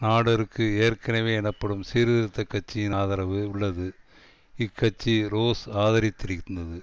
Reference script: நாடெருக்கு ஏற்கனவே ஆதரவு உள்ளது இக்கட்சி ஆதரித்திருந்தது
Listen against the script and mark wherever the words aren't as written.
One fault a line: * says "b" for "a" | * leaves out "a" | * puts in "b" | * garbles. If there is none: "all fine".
* puts in "எனப்படும் சீர்திருத்த கட்சியின்"
* puts in "ரோஸ்"